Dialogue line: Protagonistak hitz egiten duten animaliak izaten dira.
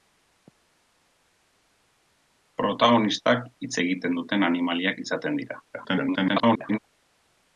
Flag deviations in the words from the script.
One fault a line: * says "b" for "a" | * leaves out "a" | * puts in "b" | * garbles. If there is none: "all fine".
* garbles